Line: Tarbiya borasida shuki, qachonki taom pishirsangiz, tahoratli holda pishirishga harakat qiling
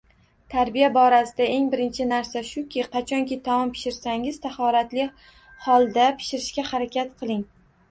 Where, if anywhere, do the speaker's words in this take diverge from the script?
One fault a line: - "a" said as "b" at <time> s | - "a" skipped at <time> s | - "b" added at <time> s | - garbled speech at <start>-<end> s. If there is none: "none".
- "eng birinchi narsa" added at 1.5 s